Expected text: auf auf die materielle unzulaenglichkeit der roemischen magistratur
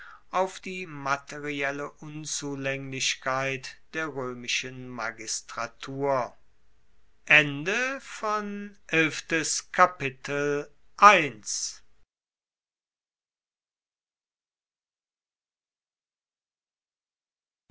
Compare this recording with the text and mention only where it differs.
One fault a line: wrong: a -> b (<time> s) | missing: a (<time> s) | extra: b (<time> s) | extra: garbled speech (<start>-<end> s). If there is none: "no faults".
missing: auf (0.6 s)